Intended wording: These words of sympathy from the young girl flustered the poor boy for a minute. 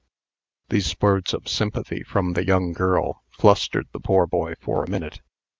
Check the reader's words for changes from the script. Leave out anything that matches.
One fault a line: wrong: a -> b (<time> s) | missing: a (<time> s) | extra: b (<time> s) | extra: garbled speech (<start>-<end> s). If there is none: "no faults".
no faults